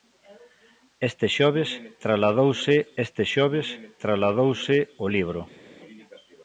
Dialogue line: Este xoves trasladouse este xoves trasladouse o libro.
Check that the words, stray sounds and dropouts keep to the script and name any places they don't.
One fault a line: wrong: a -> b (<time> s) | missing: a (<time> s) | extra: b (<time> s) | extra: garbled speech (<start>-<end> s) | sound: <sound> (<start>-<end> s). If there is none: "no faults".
no faults